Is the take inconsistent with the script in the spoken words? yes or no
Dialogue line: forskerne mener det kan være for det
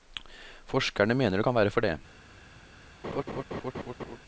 no